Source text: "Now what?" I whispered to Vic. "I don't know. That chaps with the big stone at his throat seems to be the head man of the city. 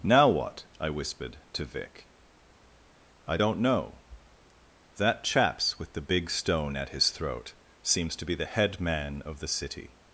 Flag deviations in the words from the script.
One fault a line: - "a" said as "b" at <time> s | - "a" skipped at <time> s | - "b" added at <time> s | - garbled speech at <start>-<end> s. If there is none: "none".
none